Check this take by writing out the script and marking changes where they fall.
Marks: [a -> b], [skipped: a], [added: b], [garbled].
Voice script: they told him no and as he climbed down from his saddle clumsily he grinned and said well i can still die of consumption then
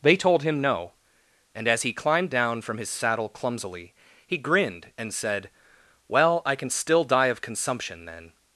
they told him no and as he climbed down from his saddle clumsily he grinned and said well i can still die of consumption then